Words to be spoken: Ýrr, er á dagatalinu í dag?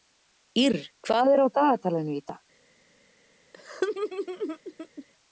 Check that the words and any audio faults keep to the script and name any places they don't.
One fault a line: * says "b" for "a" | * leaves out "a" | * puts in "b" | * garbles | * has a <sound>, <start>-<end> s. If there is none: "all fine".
* puts in "hvað"
* has a laugh, 3.5-5.1 s